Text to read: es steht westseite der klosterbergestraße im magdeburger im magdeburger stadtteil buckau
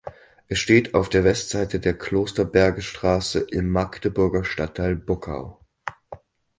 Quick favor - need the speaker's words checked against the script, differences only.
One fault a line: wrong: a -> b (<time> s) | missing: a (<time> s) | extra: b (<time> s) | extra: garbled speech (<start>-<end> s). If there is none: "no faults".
extra: auf der (0.9 s)
missing: im magdeburger (4.4 s)